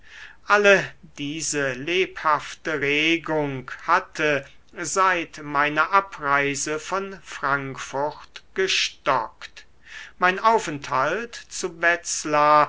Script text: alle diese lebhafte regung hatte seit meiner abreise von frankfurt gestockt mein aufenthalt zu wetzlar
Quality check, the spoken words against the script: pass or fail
pass